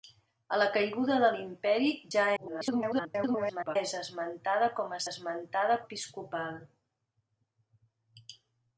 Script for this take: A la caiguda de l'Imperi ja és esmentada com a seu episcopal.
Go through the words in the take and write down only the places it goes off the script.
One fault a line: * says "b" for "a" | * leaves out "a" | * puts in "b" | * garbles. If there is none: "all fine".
* garbles
* says "esmentada" for "seu"